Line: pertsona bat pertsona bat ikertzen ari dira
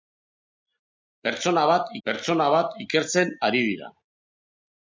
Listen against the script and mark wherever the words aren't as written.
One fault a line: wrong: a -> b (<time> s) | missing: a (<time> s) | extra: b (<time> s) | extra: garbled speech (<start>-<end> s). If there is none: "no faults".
no faults